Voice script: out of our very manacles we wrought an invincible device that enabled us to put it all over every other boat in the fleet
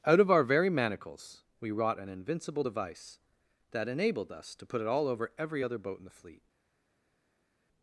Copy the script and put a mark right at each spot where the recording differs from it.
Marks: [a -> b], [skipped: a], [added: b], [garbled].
out of our very manacles we wrought an invincible device that enabled us to put it all over every other boat in the fleet